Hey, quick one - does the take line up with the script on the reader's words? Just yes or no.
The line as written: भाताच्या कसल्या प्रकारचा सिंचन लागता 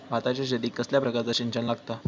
no